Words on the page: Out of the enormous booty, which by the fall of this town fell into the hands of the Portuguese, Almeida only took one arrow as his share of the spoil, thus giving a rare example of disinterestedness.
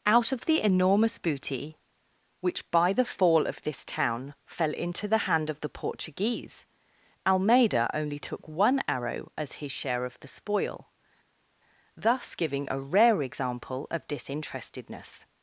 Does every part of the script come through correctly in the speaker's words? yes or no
no